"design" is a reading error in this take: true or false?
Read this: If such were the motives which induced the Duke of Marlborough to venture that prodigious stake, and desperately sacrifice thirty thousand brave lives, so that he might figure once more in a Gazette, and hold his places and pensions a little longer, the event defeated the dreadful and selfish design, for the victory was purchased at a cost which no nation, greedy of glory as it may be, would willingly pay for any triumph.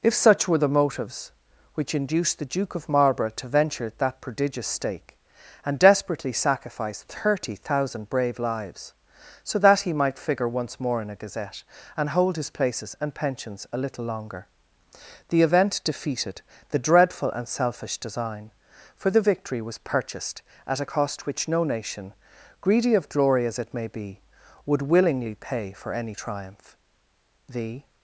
false